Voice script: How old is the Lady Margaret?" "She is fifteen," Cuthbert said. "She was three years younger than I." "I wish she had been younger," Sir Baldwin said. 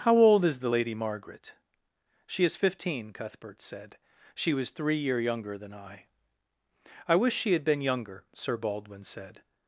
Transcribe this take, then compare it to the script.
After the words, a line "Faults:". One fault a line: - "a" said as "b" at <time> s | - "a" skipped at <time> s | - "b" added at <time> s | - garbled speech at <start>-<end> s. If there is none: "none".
How old is the Lady Margaret?" "She is fifteen," Cuthbert said. "She was three year younger than I." "I wish she had been younger," Sir Baldwin said.
Faults:
- "years" said as "year" at 4.9 s